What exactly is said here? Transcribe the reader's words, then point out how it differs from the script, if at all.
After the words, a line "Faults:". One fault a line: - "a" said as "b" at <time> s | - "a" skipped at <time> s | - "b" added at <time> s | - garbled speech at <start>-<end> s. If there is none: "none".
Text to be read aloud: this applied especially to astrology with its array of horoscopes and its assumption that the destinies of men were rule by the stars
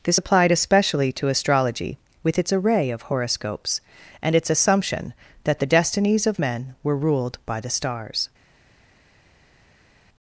this applied especially to astrology with its array of horoscopes and its assumption that the destinies of men were ruled by the stars
Faults:
- "rule" said as "ruled" at 7.0 s